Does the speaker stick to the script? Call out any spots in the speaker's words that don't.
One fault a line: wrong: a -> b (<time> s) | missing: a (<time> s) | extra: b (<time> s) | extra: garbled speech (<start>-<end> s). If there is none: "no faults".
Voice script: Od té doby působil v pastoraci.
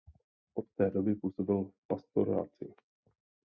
no faults